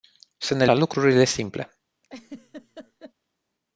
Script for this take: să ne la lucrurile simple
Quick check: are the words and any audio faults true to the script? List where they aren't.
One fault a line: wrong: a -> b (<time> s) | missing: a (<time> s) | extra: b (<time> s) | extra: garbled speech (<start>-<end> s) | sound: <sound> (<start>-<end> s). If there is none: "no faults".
sound: laugh (2.0-3.1 s)